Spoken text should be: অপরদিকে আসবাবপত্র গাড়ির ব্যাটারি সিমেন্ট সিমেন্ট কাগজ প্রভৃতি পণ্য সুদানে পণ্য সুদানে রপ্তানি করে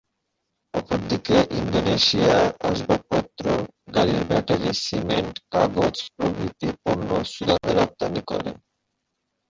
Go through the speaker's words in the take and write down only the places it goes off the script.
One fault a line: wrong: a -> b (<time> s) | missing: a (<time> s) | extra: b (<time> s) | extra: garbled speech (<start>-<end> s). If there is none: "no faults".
extra: ইন্দোনেশিয়া (1.5 s)
missing: সিমেন্ট (5.3 s)
missing: পণ্য সুদানে (7.7 s)